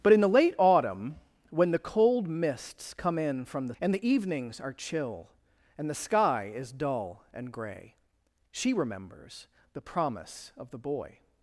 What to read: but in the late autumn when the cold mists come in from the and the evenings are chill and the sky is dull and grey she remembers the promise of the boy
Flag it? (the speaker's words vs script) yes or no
no